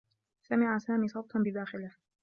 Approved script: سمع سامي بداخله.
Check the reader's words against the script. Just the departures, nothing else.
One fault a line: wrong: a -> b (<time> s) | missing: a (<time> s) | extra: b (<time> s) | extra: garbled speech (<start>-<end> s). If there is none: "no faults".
extra: صوتا (1.1 s)